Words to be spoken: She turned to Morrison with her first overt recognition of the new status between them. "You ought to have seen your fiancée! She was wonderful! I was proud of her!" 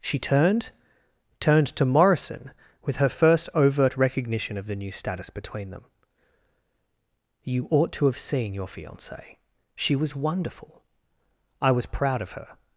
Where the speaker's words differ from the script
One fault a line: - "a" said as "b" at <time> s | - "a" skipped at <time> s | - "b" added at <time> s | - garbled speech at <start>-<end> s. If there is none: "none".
- "turned" added at 1.4 s